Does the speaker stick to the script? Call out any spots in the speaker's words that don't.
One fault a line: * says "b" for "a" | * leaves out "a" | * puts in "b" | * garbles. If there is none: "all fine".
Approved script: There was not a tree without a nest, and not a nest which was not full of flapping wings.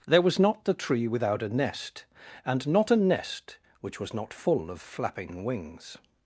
* says "the" for "a"